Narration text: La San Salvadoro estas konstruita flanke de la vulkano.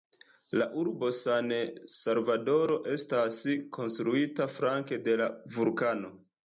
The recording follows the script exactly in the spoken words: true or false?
false